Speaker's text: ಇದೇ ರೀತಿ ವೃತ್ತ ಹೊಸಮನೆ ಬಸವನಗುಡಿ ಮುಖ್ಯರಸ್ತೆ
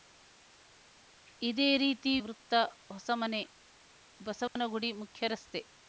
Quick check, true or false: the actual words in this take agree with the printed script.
true